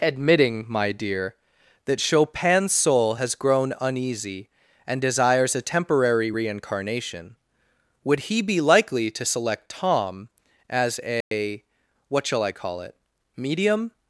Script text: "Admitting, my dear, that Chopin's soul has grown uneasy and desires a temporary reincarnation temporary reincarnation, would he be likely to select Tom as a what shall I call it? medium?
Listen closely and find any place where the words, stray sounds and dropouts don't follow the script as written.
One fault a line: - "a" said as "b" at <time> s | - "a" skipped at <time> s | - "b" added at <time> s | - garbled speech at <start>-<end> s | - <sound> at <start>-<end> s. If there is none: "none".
- "temporary reincarnation" skipped at 7.4 s
- dropout at 11.2-11.3 s